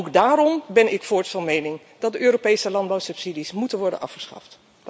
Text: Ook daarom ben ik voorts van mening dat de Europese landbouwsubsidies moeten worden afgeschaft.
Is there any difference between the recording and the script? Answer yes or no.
no